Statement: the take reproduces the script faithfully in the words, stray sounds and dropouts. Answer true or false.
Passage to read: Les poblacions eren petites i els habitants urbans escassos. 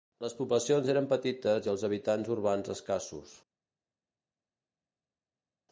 true